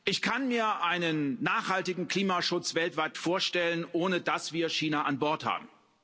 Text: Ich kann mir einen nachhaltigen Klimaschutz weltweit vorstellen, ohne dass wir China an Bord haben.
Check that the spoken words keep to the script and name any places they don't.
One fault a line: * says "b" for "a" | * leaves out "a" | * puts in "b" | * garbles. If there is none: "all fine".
all fine